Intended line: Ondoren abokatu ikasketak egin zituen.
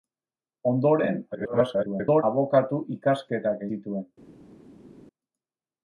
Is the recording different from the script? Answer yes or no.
yes